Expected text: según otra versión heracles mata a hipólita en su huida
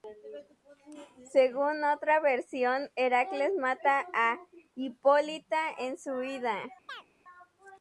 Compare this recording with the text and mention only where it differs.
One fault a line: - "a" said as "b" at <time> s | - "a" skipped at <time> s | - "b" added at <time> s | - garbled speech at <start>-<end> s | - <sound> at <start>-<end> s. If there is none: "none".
- chirp at 6.9-7.1 s